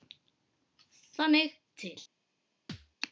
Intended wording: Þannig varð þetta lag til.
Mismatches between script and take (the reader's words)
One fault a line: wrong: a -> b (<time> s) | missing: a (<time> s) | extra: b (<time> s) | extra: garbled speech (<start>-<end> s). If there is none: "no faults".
missing: varð þetta lag (1.6 s)